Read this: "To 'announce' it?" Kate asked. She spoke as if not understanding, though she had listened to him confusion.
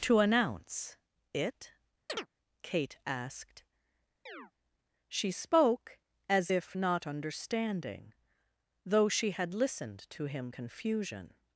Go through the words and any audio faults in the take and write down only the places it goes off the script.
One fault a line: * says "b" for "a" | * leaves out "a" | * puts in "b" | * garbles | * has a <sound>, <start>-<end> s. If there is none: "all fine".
* has a chirp, 2.1-2.3 s
* has a chirp, 4.3-4.5 s